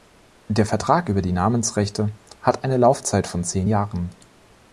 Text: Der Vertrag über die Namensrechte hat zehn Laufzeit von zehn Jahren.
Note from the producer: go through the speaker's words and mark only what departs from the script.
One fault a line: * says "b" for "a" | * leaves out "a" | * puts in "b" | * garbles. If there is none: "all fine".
* says "eine" for "zehn"